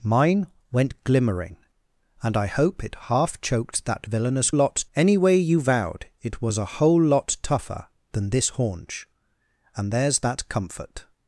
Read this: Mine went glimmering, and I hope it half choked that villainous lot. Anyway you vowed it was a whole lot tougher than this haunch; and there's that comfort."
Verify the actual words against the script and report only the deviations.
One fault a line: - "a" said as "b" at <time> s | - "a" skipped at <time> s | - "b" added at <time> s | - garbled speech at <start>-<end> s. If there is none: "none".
none